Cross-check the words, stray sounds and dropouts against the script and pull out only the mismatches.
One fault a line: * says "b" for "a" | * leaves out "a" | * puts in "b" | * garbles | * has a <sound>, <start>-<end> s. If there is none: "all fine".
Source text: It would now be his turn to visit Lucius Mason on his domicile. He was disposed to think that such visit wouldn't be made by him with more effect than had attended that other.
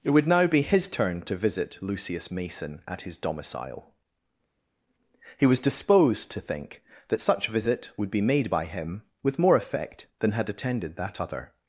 * says "at" for "on"
* says "would" for "wouldn't"